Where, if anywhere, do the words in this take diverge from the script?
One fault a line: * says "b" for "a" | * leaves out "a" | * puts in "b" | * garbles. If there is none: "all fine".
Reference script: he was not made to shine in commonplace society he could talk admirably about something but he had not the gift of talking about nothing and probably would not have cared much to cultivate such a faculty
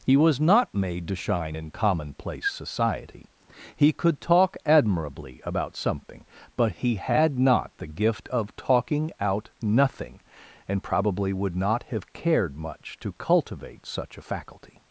* says "out" for "about"